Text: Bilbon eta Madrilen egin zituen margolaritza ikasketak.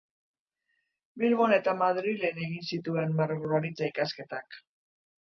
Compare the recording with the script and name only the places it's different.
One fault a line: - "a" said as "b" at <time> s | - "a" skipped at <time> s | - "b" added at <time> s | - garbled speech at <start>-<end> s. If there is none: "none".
none